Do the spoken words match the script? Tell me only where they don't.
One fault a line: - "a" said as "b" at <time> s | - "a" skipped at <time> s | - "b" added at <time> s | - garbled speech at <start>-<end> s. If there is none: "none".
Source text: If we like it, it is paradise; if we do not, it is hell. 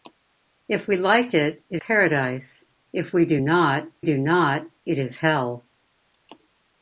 - "is" skipped at 1.8 s
- "do not" added at 4.0 s